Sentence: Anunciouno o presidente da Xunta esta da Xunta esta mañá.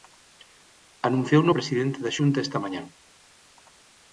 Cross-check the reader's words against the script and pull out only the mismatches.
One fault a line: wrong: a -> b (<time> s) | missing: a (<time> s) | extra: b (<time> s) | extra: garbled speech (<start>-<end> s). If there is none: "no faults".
missing: da Xunta esta (2.6 s)